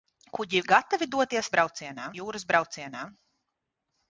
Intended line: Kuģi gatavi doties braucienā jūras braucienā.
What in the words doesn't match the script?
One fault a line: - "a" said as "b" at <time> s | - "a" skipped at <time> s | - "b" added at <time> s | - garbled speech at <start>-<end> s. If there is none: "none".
none